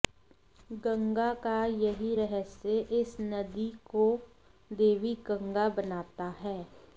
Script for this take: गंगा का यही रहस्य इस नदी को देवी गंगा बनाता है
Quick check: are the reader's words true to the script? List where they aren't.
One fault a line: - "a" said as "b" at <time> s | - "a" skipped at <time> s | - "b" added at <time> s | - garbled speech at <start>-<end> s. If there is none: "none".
none